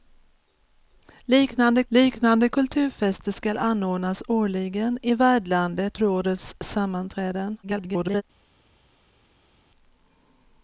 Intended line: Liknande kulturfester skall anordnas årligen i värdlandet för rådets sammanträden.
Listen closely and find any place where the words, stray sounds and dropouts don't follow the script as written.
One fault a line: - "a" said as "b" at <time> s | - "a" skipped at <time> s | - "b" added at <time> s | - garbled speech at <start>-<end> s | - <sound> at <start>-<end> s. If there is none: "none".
- "liknande" added at 1.9 s
- "för" skipped at 6.0 s
- garbled speech at 7.6-8.2 s